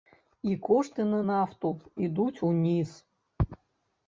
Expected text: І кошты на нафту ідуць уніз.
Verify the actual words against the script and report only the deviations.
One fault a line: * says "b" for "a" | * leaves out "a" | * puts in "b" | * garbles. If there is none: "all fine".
all fine